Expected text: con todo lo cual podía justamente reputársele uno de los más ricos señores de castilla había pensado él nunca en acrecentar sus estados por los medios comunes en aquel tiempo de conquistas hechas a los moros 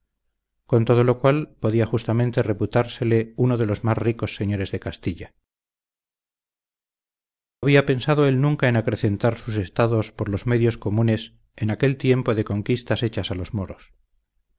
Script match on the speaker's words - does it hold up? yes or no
yes